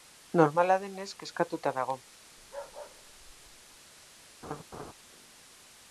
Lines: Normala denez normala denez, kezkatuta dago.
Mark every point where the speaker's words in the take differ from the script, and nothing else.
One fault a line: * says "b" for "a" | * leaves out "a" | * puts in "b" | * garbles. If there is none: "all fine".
* leaves out "normala denez"